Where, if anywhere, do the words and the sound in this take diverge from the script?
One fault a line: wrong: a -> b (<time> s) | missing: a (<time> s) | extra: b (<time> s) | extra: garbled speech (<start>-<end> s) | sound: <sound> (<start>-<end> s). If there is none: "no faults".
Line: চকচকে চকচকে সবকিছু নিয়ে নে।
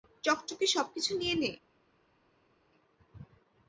missing: চকচকে (0.7 s)